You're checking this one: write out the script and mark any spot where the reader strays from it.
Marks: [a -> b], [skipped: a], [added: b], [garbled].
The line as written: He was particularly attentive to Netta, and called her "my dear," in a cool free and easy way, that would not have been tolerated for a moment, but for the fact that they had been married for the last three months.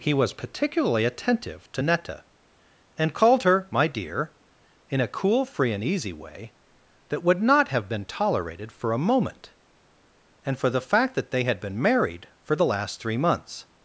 He was particularly attentive to Netta, and called her "my dear," in a cool free and easy way, that would not have been tolerated for a moment, [but -> and] for the fact that they had been married for the last three months.